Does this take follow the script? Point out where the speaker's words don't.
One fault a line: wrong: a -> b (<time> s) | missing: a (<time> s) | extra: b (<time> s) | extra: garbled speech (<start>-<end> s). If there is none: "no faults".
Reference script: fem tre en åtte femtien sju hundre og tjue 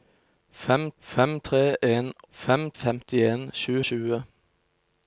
extra: fem (1.0 s)
wrong: åtte -> fem (2.3 s)
missing: hundre (3.7 s)